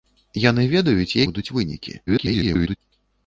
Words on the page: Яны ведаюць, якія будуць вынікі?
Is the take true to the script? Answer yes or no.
no